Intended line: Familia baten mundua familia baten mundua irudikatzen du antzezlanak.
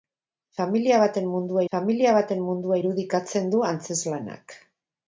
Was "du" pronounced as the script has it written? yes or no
yes